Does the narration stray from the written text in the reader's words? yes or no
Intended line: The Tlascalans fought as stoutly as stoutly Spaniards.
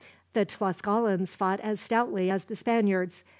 yes